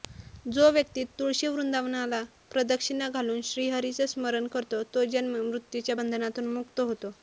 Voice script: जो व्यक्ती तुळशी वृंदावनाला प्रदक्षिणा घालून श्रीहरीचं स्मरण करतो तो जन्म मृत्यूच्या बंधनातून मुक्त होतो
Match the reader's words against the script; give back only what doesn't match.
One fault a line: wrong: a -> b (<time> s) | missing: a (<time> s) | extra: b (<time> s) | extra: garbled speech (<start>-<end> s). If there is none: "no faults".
no faults